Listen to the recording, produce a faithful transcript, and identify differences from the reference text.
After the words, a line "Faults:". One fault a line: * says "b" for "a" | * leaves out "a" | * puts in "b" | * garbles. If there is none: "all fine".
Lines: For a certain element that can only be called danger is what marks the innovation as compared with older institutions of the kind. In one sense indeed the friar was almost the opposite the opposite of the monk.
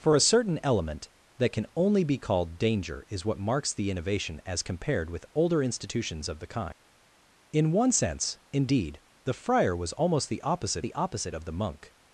For a certain element that can only be called danger is what marks the innovation as compared with older institutions of the kind. In one sense indeed the friar was almost the opposite the opposite of the monk.
Faults:
all fine